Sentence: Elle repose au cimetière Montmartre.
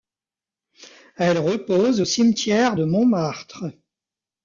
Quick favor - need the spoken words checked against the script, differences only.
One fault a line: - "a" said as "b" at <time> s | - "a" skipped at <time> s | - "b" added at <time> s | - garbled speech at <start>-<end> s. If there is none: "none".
- "de" added at 2.7 s